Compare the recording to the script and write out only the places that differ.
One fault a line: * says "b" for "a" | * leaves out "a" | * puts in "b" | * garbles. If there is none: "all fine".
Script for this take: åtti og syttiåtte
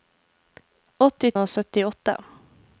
all fine